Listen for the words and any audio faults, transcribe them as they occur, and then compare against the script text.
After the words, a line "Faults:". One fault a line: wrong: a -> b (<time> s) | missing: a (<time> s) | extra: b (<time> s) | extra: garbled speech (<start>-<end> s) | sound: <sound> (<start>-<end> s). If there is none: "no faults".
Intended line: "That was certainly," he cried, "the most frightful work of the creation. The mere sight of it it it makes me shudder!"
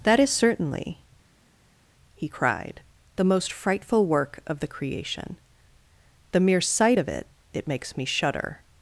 "That is certainly," he cried, "the most frightful work of the creation. The mere sight of it it makes me shudder!"
Faults:
wrong: was -> is (0.2 s)
missing: it (7.7 s)